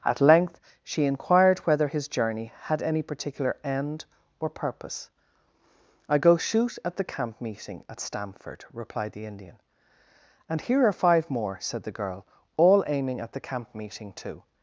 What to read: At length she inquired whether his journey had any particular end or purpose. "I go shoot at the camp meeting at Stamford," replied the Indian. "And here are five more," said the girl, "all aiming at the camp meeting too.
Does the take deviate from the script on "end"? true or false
false